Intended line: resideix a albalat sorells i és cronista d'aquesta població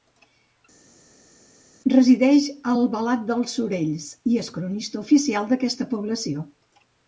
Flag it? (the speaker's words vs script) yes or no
yes